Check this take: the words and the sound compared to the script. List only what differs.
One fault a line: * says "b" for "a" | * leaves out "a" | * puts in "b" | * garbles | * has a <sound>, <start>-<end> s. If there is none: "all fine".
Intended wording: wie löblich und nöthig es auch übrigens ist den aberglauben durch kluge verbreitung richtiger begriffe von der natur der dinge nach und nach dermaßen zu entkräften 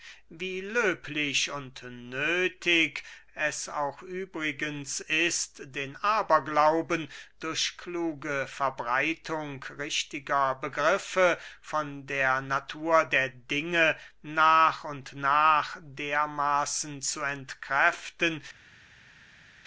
all fine